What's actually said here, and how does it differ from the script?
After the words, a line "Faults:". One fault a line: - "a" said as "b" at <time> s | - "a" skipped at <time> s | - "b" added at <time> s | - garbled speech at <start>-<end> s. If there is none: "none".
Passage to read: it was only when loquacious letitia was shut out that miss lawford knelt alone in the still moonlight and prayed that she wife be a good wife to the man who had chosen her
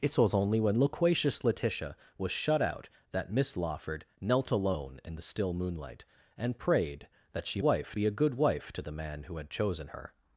it was only when loquacious letitia was shut out that miss lawford knelt alone in the still moonlight and prayed that she wife be a good wife to the man who had chosen her
Faults:
none